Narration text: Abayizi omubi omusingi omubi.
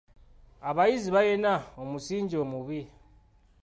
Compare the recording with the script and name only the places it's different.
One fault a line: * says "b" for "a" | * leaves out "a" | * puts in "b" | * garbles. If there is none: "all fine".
* says "balina" for "omubi"